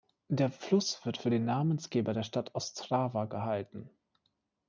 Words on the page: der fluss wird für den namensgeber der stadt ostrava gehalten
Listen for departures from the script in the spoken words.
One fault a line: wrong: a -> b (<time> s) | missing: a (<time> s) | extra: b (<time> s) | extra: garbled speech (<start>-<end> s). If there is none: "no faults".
no faults